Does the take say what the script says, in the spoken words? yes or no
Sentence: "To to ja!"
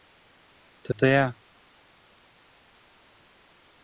yes